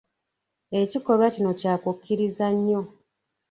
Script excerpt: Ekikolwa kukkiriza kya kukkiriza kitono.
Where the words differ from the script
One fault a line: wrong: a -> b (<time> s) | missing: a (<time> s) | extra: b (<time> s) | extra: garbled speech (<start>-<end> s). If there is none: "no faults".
wrong: kukkiriza -> kino (1.3 s)
wrong: kitono -> nnyo (2.5 s)